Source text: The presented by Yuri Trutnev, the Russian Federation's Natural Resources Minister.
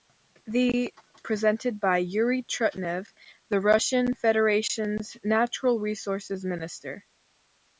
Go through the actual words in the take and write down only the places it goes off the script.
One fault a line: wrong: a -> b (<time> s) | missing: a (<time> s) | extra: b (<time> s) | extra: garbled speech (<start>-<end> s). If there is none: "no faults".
no faults